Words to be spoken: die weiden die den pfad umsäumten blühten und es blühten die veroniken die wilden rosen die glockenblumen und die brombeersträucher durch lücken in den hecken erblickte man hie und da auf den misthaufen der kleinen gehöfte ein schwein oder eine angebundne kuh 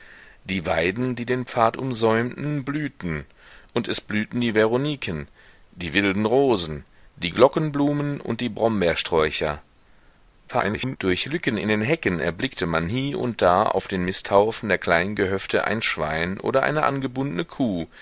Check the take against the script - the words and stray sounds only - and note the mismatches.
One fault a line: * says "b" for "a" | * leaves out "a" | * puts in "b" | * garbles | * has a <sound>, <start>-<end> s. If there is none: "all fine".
* garbles